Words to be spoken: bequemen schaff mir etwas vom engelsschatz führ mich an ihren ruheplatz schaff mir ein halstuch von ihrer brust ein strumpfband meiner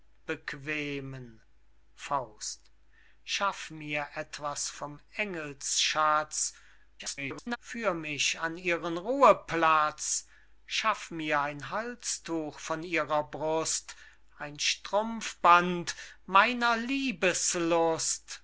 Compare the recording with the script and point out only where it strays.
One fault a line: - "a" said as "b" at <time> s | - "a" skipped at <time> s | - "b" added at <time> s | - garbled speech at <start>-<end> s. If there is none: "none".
- garbled speech at 7.0-7.6 s